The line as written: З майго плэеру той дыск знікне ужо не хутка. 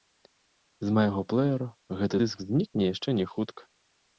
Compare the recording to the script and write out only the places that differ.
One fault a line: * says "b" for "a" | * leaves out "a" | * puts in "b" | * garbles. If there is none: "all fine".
* says "гэты" for "той"
* says "яшчэ" for "ужо"